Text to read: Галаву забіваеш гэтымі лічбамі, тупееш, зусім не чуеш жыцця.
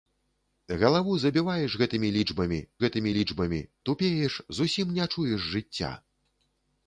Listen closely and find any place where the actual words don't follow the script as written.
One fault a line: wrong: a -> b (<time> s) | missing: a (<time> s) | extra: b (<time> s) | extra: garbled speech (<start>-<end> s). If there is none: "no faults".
extra: гэтымі лічбамі (2.9 s)